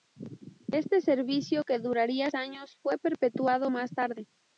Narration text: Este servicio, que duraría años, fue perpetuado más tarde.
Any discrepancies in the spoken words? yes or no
no